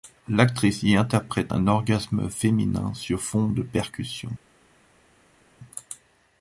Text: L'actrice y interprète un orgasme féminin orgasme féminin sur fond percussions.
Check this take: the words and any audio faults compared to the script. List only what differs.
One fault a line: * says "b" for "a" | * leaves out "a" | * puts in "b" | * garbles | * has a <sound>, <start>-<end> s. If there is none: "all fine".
* leaves out "orgasme féminin"
* puts in "de"